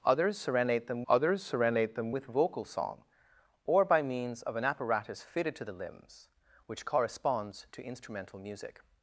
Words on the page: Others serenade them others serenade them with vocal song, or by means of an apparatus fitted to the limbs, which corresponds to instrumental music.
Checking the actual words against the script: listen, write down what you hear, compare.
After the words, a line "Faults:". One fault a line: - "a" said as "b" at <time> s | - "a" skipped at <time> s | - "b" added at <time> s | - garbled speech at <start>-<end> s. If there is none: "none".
Others serenade them others serenade them with vocal song, or by means of an apparatus fitted to the limbs, which corresponds to instrumental music.
Faults:
none